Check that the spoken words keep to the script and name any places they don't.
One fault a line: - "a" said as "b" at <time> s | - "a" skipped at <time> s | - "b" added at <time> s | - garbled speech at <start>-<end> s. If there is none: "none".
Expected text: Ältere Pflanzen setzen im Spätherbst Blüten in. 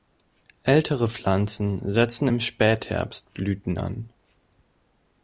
- "in" said as "an" at 3.8 s